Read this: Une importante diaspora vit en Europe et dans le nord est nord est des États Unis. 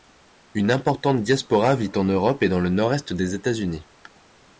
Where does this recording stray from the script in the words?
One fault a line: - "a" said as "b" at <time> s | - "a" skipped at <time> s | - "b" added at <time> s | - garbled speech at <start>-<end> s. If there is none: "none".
- "nord est" skipped at 3.1 s